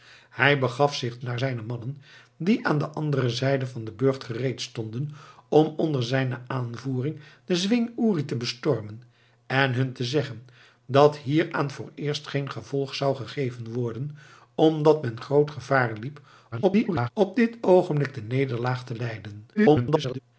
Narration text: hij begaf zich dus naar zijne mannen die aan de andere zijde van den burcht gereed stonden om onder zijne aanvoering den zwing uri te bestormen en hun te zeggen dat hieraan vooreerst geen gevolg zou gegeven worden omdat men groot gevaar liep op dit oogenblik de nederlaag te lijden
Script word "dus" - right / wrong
wrong